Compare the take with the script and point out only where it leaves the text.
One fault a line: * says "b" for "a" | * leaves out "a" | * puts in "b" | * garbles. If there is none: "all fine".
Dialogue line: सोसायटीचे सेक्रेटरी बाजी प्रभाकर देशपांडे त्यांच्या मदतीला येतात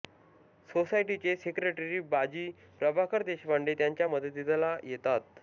all fine